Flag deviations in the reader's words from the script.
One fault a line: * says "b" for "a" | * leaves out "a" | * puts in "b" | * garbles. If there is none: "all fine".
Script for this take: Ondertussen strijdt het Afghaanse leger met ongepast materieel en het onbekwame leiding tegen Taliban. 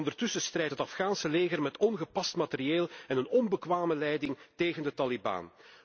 * says "een" for "het"
* puts in "de"